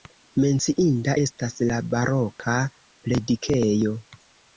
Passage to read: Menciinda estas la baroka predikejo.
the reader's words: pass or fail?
pass